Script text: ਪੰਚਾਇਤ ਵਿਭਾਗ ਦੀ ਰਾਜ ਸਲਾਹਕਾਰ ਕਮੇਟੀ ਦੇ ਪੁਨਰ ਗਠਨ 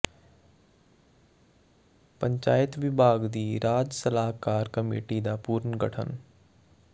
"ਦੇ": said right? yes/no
no